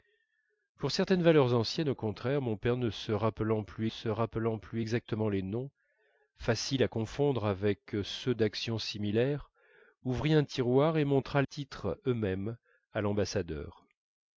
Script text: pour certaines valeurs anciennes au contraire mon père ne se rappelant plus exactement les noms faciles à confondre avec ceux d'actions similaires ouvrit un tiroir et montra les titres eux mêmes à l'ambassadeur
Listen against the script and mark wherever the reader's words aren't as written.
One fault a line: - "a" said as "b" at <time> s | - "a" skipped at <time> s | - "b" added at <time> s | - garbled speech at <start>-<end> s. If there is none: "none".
- "se rappelant plus" added at 3.9 s
- "les" skipped at 11.4 s